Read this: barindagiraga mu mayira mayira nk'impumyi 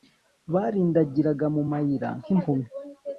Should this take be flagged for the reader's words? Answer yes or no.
yes